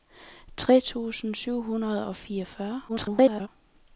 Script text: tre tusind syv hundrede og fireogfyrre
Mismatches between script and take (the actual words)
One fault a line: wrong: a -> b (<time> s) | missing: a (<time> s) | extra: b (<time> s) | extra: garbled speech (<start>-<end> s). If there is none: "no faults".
extra: garbled speech (2.9-3.5 s)